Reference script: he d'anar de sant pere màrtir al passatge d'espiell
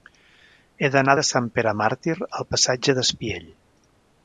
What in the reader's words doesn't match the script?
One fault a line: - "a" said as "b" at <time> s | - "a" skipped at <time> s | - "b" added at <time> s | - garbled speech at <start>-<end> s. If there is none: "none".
none